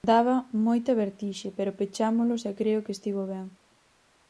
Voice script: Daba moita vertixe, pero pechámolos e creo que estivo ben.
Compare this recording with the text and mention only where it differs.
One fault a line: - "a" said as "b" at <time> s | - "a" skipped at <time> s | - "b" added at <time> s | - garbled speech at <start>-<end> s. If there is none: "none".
none